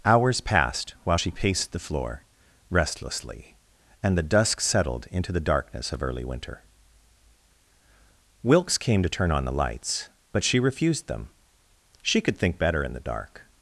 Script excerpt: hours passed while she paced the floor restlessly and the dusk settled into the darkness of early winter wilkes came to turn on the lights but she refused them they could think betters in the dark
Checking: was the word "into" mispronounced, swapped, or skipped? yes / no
no